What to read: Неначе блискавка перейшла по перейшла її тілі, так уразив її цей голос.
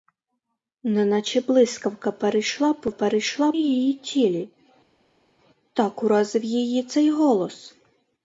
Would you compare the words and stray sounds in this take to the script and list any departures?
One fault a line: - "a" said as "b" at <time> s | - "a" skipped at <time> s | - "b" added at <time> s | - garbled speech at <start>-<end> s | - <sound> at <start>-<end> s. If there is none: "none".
none